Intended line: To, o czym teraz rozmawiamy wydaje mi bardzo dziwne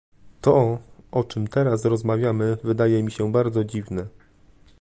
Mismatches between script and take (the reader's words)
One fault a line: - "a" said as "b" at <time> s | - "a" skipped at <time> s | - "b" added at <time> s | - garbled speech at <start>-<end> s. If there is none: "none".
- "się" added at 3.1 s